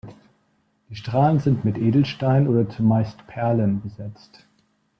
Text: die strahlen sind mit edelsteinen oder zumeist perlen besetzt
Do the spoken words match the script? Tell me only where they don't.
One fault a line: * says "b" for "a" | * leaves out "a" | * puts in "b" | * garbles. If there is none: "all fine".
all fine